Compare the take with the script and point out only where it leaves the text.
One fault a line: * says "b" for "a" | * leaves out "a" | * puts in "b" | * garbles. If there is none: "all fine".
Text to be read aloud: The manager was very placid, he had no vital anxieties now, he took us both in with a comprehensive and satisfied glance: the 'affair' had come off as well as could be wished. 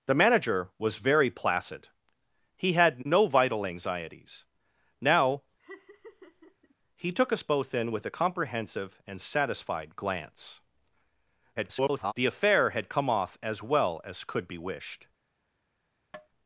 * garbles